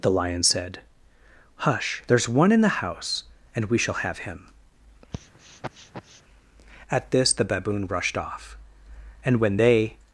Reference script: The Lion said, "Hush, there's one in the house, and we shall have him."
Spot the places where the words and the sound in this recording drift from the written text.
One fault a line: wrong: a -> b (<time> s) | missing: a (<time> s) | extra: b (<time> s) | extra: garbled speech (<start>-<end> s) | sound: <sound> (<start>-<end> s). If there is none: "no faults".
sound: sniff (5.1-6.2 s)
extra: At this the Baboon rushed off and when they (6.9 s)